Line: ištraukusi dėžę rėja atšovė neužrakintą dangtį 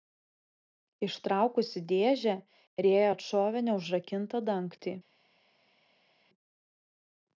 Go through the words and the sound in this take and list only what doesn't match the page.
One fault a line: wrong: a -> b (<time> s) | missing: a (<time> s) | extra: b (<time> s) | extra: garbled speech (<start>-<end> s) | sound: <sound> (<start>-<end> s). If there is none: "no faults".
no faults